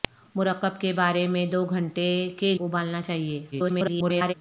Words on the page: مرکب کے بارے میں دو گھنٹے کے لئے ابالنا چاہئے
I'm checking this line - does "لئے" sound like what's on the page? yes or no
no